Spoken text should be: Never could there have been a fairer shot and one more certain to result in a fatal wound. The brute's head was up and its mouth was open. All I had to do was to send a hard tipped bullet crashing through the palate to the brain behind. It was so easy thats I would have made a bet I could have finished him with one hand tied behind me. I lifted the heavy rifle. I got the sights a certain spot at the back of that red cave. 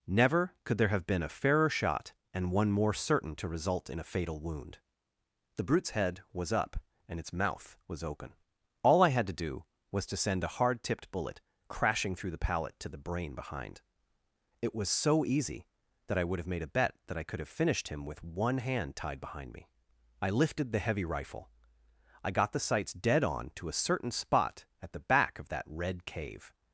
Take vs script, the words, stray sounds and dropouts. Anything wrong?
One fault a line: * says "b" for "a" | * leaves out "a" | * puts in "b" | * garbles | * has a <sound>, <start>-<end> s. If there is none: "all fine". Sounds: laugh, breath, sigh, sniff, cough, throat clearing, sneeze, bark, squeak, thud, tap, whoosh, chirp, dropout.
* says "that" for "thats"
* puts in "that"
* puts in "dead on to"